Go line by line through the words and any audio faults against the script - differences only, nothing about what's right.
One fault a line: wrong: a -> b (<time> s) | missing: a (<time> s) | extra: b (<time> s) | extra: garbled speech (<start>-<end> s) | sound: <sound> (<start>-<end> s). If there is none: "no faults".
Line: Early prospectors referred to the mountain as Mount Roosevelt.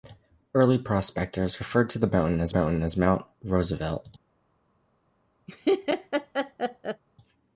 extra: mountain as (2.5 s)
sound: laugh (5.5-7.0 s)